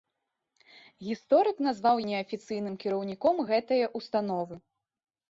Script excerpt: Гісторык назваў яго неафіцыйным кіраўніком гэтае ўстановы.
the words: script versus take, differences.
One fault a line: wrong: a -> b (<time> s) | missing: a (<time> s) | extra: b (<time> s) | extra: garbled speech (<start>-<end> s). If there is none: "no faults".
missing: яго (2.0 s)